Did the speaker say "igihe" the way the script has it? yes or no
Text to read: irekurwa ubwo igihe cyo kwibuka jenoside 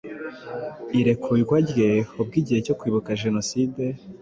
yes